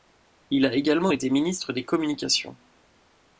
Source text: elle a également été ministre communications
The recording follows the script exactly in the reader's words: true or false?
false